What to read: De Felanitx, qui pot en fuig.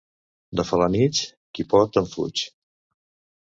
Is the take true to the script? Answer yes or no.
yes